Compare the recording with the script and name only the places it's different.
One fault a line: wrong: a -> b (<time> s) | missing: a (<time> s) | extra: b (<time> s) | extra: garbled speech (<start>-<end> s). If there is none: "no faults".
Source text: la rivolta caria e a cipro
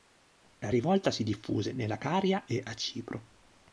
extra: si diffuse nella (1.1 s)